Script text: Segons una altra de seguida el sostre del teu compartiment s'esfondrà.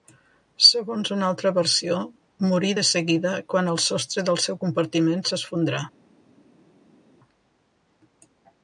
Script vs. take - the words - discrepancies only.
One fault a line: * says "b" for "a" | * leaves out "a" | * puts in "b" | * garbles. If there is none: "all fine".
* puts in "versió morí"
* puts in "quan"
* says "seu" for "teu"